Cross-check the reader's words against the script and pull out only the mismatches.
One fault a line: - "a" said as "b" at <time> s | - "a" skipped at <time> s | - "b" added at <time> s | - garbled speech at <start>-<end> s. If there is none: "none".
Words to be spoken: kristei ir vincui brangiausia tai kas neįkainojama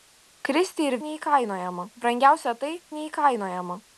- "vincui" said as "neįkainojama" at 1.1 s
- "kas" skipped at 2.7 s